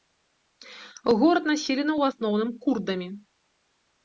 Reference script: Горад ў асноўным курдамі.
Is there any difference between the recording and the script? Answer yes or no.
yes